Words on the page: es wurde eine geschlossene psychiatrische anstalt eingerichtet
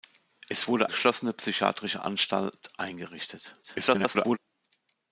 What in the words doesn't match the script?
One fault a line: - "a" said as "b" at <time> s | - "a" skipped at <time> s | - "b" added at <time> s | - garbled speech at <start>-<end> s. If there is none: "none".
- "eine" skipped at 0.9 s
- garbled speech at 3.6-4.4 s